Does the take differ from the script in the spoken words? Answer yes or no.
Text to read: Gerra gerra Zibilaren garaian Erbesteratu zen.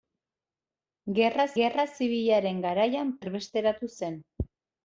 no